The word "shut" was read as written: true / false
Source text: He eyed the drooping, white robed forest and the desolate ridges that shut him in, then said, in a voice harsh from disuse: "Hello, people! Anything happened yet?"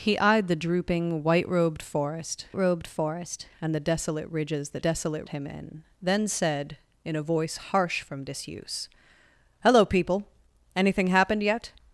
false